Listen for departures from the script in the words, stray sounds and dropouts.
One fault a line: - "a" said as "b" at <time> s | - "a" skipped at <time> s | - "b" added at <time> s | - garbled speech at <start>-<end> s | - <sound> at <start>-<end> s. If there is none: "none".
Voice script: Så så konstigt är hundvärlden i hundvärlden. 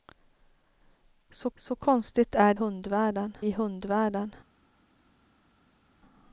none